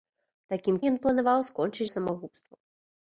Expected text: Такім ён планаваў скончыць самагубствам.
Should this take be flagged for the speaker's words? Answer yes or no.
no